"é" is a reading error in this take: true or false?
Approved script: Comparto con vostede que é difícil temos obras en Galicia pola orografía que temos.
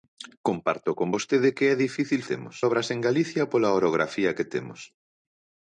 false